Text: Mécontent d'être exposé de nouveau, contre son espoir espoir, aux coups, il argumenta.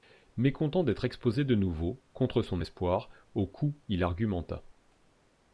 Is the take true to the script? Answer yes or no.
no